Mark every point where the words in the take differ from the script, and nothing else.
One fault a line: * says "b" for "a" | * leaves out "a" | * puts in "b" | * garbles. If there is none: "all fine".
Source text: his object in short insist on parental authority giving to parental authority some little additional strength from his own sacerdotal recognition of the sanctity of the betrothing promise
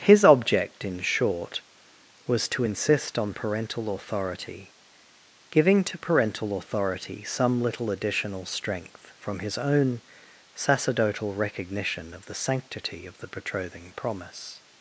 * puts in "was to"